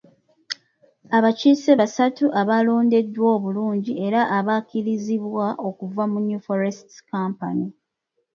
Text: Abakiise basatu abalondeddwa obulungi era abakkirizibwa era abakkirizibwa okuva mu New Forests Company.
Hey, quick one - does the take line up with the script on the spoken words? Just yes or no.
no